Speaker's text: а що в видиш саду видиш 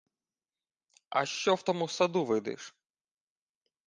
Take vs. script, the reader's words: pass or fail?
fail